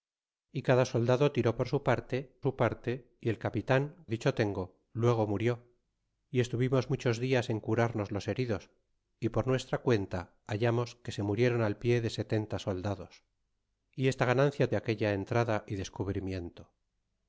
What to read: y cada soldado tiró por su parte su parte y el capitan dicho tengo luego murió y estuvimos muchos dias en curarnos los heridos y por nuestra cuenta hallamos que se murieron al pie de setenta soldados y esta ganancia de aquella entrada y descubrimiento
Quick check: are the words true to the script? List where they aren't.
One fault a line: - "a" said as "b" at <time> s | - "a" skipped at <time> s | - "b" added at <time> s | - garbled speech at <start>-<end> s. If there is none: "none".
none